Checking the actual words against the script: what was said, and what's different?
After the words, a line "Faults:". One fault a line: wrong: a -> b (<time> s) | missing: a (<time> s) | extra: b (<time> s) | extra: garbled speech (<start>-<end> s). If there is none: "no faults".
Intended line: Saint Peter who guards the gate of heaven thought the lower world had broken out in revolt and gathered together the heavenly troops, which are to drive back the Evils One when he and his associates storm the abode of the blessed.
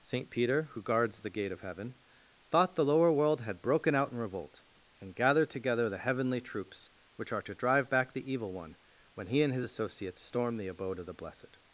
Saint Peter who guards the gate of heaven thought the lower world had broken out in revolt and gathered together the heavenly troops, which are to drive back the Evil One when he and his associates storm the abode of the blessed.
Faults:
wrong: Evils -> Evil (8.3 s)